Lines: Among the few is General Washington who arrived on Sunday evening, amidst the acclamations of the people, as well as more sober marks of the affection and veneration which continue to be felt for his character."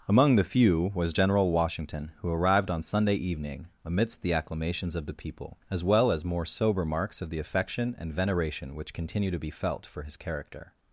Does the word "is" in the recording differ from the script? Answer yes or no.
yes